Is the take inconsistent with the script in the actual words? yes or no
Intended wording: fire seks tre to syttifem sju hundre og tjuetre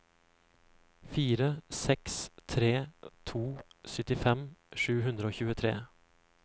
no